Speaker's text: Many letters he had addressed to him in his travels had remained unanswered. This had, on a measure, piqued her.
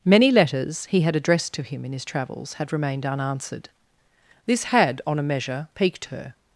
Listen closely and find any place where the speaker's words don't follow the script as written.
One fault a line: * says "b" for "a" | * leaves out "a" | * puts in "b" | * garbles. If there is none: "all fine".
all fine